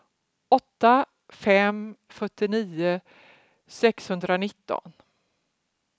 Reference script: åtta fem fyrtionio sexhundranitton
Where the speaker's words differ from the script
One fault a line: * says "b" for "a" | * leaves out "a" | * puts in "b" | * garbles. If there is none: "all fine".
all fine